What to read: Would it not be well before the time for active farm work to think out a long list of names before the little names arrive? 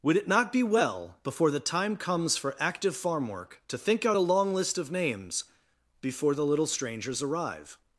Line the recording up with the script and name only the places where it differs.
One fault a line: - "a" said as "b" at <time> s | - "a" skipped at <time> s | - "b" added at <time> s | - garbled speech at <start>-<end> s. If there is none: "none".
- "comes" added at 1.9 s
- "names" said as "strangers" at 6.7 s